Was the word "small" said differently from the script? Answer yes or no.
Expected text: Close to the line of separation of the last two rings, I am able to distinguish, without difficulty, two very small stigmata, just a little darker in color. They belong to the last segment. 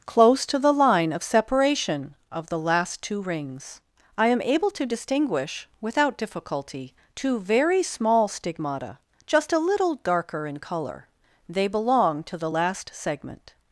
no